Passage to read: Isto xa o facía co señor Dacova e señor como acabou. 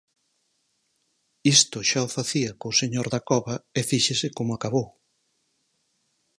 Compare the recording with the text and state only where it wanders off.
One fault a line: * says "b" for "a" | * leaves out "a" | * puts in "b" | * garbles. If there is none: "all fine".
* says "fíxese" for "señor"